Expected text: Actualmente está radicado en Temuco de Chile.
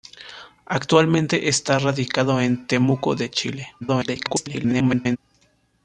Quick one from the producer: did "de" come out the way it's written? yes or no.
yes